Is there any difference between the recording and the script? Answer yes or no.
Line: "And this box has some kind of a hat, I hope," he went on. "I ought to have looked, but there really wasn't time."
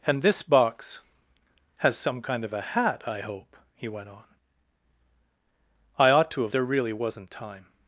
yes